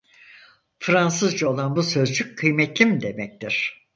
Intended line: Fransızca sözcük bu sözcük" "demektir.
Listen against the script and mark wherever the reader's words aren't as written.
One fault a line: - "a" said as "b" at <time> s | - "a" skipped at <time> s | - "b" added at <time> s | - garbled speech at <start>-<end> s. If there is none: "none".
- "sözcük" said as "olan" at 1.5 s
- "kıymetlim" added at 2.4 s